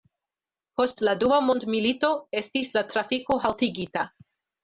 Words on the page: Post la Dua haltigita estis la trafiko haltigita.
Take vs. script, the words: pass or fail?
fail